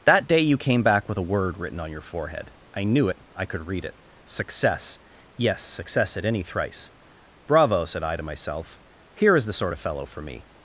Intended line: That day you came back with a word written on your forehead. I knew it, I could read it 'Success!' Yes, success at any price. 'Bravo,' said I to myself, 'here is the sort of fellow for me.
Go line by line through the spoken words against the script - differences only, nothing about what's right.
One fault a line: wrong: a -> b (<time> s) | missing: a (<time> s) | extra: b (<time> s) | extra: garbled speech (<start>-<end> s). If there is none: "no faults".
wrong: price -> thrice (6.4 s)